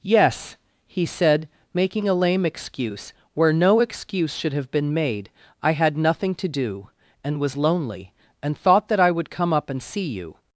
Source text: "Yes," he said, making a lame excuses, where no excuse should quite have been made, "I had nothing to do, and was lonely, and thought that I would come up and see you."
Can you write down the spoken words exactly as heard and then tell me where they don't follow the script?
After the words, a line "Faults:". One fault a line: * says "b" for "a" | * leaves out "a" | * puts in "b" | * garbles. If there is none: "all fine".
"Yes," he said, making a lame excuse, where no excuse should have been made, "I had nothing to do, and was lonely, and thought that I would come up and see you."
Faults:
* says "excuse" for "excuses"
* leaves out "quite"